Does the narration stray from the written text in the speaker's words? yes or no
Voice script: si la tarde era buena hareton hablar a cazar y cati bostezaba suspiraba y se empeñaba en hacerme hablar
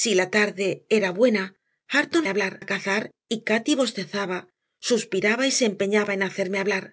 no